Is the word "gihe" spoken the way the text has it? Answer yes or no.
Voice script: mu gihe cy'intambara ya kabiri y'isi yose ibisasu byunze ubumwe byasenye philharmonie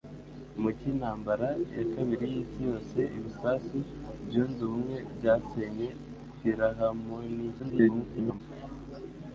no